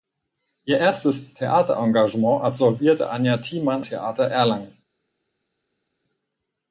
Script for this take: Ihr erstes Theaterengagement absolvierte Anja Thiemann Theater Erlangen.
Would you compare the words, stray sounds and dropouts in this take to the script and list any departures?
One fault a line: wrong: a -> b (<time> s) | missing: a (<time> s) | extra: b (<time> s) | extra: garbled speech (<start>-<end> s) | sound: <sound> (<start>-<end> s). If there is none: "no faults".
no faults